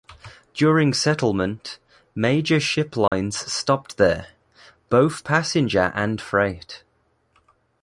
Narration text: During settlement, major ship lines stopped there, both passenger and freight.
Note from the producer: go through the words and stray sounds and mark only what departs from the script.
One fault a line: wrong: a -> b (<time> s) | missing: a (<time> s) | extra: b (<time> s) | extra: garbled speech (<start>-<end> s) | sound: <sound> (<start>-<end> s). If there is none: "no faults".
sound: dropout (3.1-3.1 s)